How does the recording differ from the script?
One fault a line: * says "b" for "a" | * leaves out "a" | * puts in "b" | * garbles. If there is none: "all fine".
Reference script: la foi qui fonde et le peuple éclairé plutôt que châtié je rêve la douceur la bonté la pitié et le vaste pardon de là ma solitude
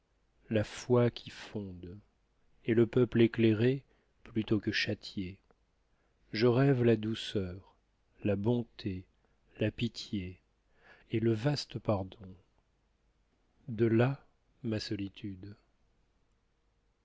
all fine